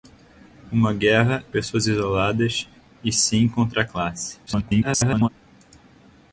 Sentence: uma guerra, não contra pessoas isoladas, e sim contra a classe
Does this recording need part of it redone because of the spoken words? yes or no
yes